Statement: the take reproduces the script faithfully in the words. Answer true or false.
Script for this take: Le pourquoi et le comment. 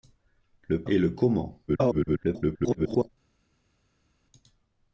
false